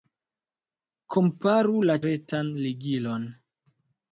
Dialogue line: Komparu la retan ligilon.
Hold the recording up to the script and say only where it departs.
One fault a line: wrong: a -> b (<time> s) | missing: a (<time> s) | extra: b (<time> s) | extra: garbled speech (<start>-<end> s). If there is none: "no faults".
no faults